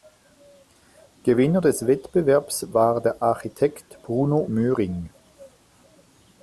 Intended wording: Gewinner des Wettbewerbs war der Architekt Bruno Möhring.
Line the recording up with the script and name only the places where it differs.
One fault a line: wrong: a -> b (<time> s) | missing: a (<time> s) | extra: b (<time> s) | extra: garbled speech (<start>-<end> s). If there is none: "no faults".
no faults